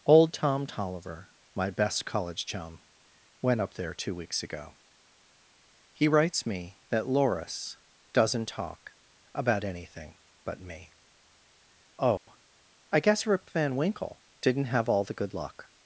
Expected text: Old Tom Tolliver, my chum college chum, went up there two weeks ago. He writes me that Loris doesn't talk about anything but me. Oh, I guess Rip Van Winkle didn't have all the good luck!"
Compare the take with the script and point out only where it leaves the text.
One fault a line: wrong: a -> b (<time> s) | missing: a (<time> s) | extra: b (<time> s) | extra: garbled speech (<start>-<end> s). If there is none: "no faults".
wrong: chum -> best (1.7 s)